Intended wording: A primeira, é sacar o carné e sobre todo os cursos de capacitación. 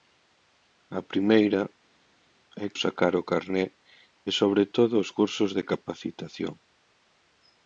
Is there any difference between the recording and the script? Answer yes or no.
no